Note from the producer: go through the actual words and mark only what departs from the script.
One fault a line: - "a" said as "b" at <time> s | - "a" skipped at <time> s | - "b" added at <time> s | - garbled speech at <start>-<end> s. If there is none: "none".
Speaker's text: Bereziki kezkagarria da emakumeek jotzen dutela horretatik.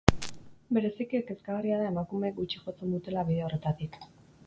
- "gutxi" added at 2.4 s
- "bide" added at 3.3 s